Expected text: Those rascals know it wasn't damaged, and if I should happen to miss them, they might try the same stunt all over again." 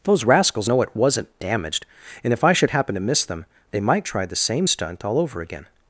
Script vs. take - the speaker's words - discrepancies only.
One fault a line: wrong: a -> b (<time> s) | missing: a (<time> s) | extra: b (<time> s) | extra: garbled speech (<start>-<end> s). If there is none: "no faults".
no faults